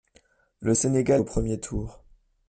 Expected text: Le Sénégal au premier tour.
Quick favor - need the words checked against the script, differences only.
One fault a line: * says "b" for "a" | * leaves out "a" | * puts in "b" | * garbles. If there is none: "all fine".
all fine